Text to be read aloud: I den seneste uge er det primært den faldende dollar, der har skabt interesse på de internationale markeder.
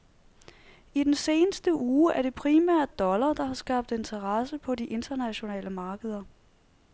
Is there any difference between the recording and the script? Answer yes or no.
yes